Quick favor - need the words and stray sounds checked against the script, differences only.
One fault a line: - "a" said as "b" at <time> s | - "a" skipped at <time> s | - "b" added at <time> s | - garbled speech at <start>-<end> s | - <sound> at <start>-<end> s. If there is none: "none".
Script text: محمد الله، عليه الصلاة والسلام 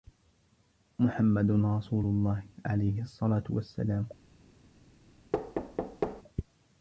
- "رسول" added at 1.5 s
- thud at 5.3-6.2 s